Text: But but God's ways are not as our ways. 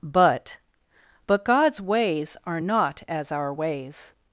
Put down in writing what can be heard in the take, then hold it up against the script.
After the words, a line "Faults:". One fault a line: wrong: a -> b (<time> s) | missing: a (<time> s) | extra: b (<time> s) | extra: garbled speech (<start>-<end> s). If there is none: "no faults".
But but God's ways are not as our ways.
Faults:
no faults